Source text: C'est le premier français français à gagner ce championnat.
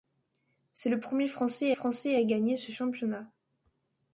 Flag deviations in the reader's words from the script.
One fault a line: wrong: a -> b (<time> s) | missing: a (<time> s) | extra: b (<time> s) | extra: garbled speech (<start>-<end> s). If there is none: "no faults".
no faults